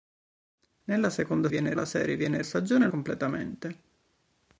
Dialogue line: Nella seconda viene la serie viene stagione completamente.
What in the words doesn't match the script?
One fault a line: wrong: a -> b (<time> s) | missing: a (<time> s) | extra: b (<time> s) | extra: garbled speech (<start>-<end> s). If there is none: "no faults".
no faults